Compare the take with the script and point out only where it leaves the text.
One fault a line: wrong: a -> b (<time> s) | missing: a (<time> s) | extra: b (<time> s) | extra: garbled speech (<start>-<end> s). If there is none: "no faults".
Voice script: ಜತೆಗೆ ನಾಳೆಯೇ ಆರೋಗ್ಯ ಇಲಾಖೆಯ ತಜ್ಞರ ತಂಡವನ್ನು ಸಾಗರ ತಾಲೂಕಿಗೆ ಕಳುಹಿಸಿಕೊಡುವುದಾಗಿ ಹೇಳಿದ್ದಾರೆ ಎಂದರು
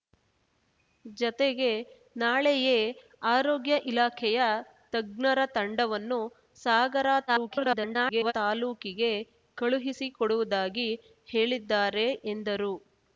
extra: garbled speech (7.3-8.3 s)